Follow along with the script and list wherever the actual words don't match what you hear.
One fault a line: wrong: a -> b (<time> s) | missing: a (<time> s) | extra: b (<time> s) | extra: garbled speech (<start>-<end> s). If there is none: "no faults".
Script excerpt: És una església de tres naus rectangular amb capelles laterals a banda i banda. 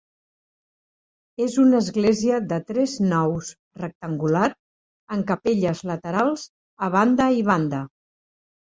no faults